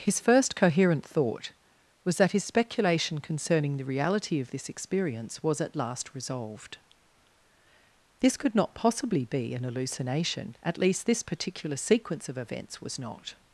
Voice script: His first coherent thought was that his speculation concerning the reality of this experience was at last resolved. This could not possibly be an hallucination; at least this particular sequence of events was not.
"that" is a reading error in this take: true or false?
false